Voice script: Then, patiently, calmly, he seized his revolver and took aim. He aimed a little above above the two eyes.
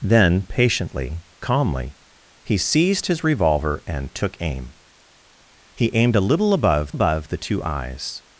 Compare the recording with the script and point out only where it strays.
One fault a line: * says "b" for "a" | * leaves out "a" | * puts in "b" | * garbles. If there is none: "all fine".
all fine